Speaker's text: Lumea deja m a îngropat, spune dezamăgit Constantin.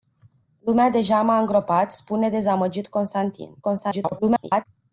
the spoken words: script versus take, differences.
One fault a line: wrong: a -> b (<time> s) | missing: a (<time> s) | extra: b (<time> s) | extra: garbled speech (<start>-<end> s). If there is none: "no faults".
extra: garbled speech (3.6-4.6 s)